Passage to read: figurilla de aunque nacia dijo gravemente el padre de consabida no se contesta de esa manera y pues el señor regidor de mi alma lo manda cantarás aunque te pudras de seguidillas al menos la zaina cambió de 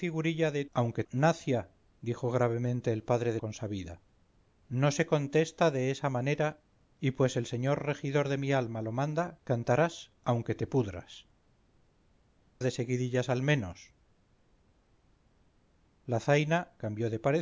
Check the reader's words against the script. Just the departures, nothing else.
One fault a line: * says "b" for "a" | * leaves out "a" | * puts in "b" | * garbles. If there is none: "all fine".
all fine